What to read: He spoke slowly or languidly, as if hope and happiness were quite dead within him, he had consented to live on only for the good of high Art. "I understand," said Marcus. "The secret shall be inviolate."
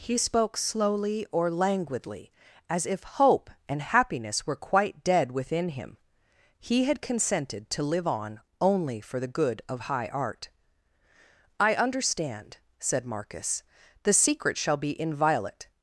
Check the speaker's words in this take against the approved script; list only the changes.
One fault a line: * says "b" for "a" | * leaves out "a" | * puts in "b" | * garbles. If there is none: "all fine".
all fine